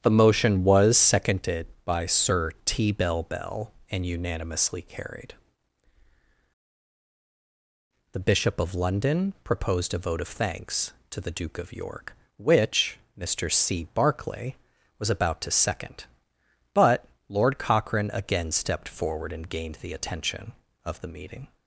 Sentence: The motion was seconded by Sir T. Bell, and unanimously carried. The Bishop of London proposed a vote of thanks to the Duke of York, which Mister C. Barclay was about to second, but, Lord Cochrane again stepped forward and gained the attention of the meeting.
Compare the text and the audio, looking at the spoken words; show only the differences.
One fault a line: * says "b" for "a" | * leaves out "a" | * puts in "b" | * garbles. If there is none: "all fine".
* puts in "Bell"